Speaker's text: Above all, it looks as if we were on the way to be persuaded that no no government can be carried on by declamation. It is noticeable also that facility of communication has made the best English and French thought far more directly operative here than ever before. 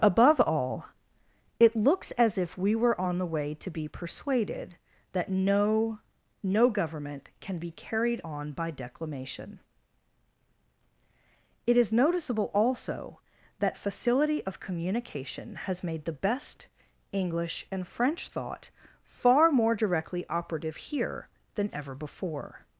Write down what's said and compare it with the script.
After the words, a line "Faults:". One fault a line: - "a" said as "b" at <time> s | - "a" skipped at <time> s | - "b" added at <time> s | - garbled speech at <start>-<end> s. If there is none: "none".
Above all, it looks as if we were on the way to be persuaded that no no government can be carried on by declamation. It is noticeable also that facility of communication has made the best English and French thought far more directly operative here than ever before.
Faults:
none